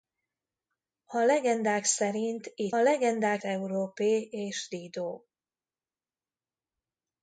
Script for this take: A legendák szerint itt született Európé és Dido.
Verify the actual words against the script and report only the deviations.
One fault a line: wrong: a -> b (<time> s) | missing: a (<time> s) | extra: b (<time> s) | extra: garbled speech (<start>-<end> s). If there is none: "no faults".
wrong: született -> legendák (2.7 s)